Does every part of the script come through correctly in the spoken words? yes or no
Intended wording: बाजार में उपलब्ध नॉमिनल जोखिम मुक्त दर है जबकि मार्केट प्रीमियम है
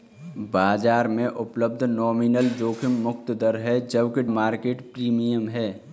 yes